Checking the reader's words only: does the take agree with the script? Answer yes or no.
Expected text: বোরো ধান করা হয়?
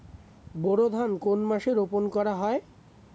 no